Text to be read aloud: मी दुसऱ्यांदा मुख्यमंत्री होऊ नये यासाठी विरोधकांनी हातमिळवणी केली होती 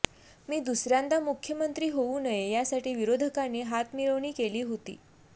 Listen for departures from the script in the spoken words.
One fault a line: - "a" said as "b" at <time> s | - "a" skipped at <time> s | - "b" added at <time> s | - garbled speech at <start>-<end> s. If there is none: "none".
none